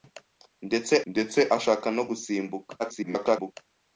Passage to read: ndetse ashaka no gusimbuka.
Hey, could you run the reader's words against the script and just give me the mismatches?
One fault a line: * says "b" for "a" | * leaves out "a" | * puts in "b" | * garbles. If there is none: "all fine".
* puts in "ndetse"
* garbles